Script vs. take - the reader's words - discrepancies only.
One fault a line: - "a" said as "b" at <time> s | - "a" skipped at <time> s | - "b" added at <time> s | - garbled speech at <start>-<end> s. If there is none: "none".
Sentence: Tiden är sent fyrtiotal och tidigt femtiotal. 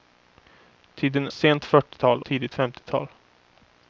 - "är" skipped at 1.3 s
- "och" skipped at 2.2 s